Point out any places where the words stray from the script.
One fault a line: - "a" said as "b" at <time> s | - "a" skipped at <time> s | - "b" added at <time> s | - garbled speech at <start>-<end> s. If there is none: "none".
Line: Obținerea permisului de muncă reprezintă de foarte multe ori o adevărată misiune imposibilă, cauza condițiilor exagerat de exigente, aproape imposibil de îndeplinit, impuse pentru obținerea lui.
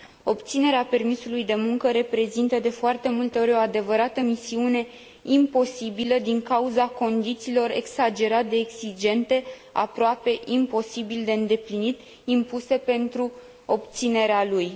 - "din" added at 6.2 s